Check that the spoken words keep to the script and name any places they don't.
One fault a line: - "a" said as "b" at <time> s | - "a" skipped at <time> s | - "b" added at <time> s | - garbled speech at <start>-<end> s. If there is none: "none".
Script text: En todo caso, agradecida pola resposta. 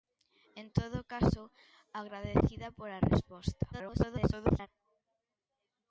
- garbled speech at 3.7-4.7 s